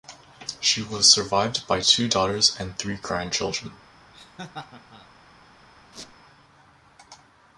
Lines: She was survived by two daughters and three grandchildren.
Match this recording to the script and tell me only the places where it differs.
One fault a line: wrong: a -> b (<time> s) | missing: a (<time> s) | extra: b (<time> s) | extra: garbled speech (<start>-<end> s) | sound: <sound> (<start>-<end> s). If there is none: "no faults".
sound: laugh (4.1-5.1 s)
sound: squeak (5.9-6.2 s)